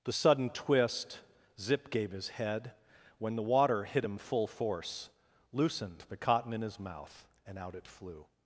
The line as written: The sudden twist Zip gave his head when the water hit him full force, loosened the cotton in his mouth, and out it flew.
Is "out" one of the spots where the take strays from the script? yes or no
no